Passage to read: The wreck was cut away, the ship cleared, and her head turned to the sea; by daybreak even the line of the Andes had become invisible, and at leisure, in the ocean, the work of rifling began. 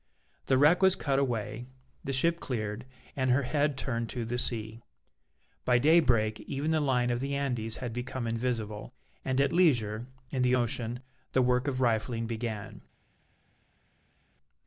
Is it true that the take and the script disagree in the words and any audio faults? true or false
false